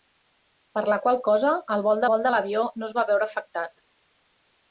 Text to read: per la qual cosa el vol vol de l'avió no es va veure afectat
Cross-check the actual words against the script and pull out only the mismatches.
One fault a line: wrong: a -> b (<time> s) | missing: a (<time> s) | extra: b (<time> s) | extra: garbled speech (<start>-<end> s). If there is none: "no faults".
no faults